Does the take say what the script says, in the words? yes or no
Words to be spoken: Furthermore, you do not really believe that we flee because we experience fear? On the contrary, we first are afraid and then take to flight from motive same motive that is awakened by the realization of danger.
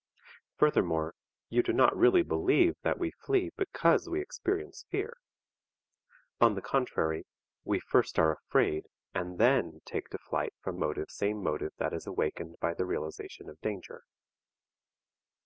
yes